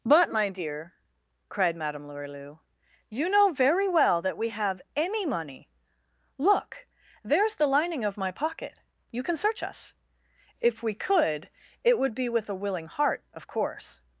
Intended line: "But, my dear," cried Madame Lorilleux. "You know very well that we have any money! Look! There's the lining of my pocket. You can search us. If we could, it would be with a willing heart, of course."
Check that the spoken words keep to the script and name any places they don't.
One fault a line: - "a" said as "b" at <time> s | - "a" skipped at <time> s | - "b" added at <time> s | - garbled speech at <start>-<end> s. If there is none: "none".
none